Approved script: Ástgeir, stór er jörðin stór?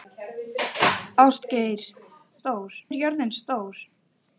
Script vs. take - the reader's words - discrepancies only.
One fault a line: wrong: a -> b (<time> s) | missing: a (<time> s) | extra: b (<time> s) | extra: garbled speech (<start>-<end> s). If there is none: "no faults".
no faults